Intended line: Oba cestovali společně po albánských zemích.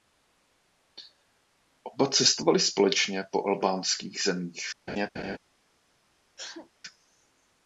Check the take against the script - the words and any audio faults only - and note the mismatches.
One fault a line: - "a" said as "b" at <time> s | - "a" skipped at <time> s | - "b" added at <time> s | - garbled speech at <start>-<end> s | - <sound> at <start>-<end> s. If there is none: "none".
- laugh at 4.9-5.4 s
- sneeze at 6.4-6.7 s